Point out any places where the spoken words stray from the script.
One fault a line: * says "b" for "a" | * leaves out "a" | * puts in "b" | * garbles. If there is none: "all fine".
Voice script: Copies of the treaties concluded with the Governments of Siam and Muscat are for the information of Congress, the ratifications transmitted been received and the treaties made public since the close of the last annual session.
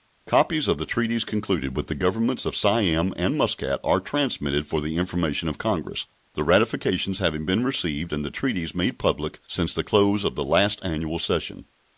* puts in "transmitted"
* says "having" for "transmitted"